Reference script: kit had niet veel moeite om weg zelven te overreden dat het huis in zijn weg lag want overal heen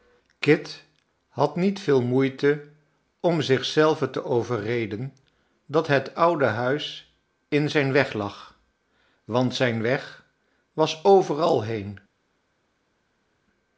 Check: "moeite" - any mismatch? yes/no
no